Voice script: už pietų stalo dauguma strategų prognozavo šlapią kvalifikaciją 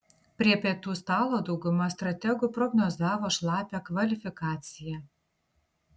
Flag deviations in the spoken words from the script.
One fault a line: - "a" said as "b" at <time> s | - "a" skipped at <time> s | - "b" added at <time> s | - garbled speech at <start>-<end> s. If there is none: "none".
- "už" said as "prie" at 0.4 s